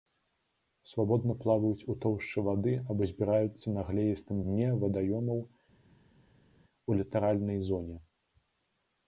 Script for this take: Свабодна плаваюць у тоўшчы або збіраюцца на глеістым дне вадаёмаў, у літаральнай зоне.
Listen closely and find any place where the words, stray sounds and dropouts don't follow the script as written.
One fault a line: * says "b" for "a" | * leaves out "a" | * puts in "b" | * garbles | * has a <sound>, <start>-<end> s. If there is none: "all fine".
* puts in "вады"